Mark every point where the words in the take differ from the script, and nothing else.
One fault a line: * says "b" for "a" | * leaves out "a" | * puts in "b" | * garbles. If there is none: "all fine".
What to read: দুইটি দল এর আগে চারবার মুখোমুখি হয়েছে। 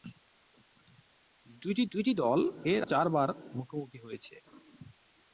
* puts in "দুইটি"
* leaves out "আগে"